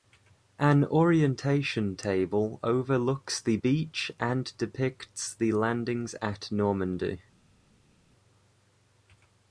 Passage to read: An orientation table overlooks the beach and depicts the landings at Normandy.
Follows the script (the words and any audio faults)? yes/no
yes